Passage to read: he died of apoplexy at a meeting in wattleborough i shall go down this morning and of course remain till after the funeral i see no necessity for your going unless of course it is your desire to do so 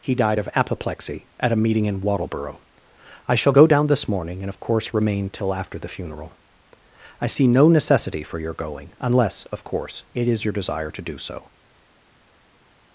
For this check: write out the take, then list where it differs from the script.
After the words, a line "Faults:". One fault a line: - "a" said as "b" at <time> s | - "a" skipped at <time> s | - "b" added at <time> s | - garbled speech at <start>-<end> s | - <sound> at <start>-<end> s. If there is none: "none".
he died of apoplexy at a meeting in wattleborough i shall go down this morning and of course remain till after the funeral i see no necessity for your going unless of course it is your desire to do so
Faults:
none